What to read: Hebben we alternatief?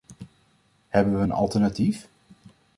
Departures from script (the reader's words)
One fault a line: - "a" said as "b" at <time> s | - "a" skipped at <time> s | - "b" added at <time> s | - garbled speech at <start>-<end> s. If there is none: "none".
- "een" added at 1.2 s